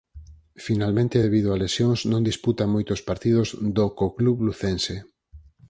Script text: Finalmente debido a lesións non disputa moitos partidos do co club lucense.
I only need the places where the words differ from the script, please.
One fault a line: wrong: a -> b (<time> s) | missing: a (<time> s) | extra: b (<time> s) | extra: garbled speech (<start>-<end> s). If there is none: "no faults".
no faults